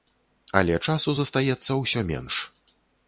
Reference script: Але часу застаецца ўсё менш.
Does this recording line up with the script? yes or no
yes